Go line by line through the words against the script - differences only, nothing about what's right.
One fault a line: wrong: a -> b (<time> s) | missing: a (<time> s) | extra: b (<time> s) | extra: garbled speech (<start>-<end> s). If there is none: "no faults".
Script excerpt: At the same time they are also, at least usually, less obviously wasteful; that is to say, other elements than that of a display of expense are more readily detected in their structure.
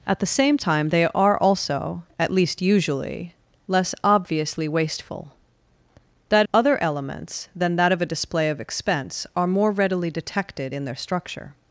missing: is to say (6.5 s)